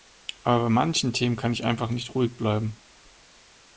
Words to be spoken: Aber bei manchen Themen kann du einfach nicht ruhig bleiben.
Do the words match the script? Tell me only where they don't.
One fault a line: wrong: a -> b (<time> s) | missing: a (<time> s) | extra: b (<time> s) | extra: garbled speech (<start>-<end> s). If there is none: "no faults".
wrong: du -> ich (1.5 s)